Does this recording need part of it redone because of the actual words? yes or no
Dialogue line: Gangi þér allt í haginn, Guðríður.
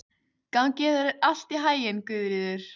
no